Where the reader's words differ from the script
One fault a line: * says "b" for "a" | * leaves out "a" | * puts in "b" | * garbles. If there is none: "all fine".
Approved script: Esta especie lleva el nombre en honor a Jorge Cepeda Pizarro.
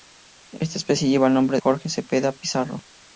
* leaves out "en honor a"